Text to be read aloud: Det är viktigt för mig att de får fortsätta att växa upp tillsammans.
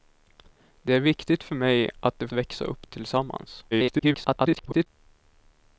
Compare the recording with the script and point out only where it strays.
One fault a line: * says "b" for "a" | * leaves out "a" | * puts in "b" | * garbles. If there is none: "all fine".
* leaves out "får fortsätta att"
* garbles